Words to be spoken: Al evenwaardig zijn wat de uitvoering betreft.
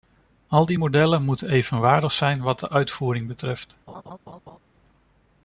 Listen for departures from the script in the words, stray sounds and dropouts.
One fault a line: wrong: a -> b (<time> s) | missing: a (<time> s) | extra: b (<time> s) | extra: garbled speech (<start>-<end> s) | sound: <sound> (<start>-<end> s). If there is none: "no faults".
extra: die modellen moeten (0.7 s)
sound: laugh (3.9-4.6 s)